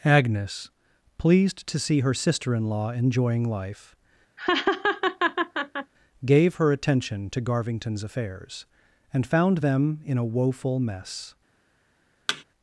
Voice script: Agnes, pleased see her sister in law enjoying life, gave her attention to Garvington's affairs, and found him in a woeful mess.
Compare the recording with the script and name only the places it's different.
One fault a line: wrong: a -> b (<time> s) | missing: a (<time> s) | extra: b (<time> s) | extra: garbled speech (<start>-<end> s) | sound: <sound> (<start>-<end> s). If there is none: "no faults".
extra: to (1.7 s)
sound: laugh (4.4-5.9 s)
wrong: him -> them (9.6 s)
sound: thud (12.3-12.4 s)